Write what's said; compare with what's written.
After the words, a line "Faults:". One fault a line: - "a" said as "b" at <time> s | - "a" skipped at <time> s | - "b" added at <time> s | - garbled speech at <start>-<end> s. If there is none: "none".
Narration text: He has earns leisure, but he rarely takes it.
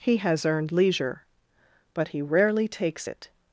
He has earned leisure, but he rarely takes it.
Faults:
- "earns" said as "earned" at 0.5 s